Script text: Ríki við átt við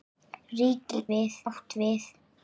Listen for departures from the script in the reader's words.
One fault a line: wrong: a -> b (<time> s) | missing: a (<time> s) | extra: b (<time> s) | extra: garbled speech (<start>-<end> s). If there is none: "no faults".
no faults